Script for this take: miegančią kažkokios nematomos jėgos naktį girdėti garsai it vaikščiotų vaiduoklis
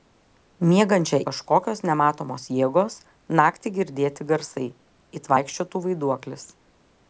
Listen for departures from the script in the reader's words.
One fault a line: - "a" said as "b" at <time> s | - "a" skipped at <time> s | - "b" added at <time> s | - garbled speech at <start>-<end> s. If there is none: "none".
none